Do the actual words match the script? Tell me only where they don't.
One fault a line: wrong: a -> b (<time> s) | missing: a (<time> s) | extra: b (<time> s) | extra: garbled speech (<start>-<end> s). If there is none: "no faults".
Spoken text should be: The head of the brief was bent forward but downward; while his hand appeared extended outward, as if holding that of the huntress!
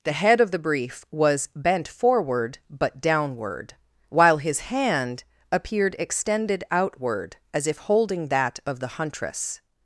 no faults